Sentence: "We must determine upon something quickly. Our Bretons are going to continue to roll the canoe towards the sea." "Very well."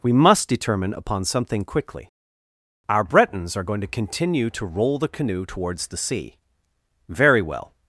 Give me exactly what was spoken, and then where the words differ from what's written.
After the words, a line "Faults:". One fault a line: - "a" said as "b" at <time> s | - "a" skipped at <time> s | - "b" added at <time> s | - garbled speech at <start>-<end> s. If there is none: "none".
"We must determine upon something quickly. Our Bretons are going to continue to roll the canoe towards the sea." "Very well."
Faults:
none